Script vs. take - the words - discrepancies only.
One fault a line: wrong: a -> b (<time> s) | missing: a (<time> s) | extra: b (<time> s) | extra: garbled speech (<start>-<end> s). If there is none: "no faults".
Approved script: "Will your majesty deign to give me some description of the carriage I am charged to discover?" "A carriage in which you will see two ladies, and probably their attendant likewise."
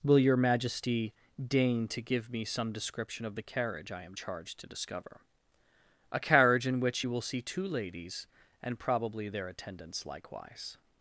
wrong: attendant -> attendants (9.5 s)